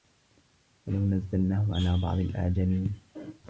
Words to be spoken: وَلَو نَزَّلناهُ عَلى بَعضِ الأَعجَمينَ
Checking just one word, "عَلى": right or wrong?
right